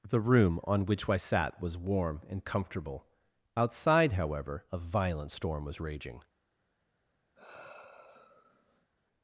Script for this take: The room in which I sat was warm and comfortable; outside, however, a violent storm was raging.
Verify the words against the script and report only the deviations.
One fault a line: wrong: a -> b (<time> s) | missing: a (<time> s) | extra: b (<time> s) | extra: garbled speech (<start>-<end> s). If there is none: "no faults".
wrong: in -> on (0.7 s)